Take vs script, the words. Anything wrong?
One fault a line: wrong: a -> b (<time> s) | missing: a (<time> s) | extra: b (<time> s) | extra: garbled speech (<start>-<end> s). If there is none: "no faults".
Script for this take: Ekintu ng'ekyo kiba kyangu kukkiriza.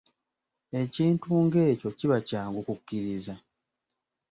no faults